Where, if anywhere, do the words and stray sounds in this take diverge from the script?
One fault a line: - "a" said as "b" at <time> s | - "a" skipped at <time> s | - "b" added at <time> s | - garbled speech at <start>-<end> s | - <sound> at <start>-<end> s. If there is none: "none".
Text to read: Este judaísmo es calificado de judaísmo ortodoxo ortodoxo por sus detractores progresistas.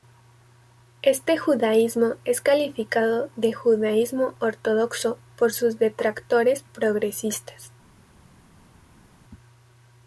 - "ortodoxo" skipped at 5.2 s